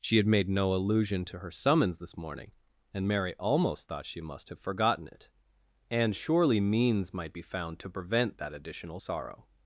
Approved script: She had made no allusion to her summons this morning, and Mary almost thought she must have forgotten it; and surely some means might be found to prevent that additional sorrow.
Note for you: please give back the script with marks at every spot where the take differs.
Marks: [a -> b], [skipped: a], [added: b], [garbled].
She had made no allusion to her summons this morning, and Mary almost thought she must have forgotten it; and surely [skipped: some] means might be found to prevent that additional sorrow.